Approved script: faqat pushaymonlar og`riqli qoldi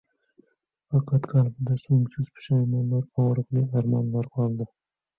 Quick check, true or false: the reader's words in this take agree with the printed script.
false